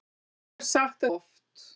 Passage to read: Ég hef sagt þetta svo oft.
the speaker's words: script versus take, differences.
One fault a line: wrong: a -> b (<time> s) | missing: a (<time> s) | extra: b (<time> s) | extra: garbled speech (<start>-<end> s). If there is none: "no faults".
missing: þetta svo (1.1 s)